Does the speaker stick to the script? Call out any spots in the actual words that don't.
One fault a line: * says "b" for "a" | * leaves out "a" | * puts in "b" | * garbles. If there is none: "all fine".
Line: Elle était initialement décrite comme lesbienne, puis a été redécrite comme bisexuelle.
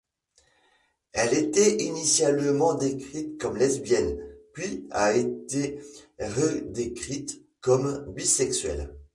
all fine